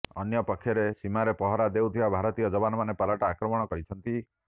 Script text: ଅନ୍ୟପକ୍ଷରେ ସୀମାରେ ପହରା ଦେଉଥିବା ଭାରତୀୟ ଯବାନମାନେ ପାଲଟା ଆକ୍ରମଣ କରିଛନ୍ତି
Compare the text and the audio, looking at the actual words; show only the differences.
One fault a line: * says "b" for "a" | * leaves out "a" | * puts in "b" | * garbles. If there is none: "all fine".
all fine